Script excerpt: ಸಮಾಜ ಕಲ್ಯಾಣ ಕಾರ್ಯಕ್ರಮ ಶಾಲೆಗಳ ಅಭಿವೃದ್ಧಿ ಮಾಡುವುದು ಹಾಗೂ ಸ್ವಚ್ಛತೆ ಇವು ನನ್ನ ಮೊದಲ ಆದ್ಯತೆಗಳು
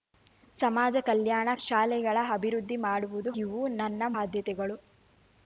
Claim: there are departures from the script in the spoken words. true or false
true